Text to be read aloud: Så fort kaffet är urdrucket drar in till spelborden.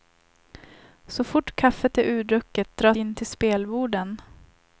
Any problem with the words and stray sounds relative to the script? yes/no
no